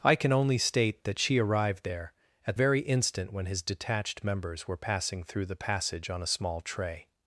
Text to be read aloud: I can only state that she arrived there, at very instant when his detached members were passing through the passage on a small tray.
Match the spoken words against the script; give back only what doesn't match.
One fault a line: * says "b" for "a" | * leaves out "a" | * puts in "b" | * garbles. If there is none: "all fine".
all fine